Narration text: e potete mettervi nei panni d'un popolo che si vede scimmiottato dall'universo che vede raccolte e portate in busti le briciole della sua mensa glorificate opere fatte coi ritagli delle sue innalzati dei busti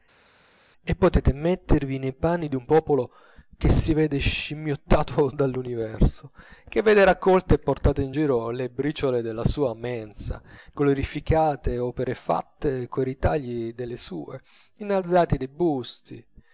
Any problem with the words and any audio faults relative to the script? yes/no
yes